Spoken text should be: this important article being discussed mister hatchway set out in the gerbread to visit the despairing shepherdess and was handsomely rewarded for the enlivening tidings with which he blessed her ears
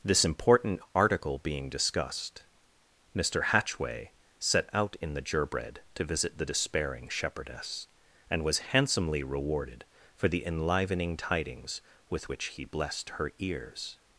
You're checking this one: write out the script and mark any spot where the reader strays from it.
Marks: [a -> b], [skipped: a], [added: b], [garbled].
this important article being discussed mister hatchway set out in the gerbread to visit the despairing shepherdess and was handsomely rewarded for the enlivening tidings with which he blessed her ears